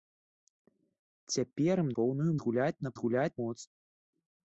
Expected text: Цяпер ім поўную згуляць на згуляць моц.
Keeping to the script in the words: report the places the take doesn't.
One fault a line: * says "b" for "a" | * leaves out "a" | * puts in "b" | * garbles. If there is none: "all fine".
all fine